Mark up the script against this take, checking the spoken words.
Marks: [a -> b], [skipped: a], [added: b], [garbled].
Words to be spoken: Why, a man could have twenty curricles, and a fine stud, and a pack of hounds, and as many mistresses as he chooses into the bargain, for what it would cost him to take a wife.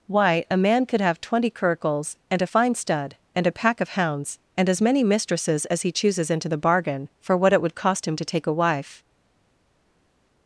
Why, a man could have twenty curricles, and a fine stud, and a pack of hounds, and as many mistresses as he chooses into the bargain, for what it would cost him to take a wife.